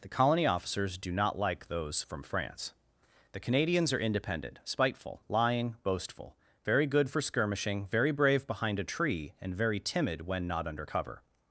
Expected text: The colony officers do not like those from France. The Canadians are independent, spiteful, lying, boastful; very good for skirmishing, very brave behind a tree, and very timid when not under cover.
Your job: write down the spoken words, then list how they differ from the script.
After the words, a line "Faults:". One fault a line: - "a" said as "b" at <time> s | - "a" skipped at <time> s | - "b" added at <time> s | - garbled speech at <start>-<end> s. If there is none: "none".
The colony officers do not like those from France. The Canadians are independent, spiteful, lying, boastful; very good for skirmishing, very brave behind a tree, and very timid when not under cover.
Faults:
none